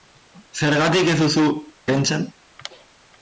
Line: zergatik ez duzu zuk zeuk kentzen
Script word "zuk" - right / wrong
wrong